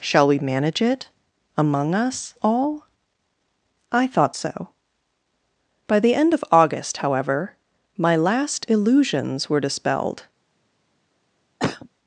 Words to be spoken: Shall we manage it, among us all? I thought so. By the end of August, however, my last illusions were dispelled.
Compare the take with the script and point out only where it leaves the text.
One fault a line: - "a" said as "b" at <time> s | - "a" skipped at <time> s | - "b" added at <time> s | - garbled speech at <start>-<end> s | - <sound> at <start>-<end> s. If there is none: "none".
- cough at 11.6-11.9 s